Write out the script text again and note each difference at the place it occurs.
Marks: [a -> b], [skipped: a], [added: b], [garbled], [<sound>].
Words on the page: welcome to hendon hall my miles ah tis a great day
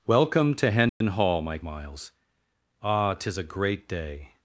welcome to hendon [dropout] hall my miles ah tis a great day